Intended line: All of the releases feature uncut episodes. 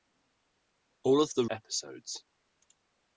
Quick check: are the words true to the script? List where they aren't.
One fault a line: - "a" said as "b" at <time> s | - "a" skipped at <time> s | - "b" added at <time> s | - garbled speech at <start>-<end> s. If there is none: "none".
- "releases feature uncut" skipped at 1.4 s